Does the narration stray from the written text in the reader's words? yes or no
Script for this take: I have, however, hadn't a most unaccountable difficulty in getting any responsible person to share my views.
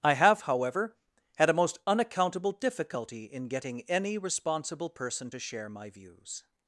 yes